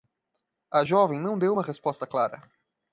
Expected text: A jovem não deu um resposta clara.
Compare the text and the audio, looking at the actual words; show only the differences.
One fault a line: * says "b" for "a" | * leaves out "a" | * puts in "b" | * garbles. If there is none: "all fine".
* says "uma" for "um"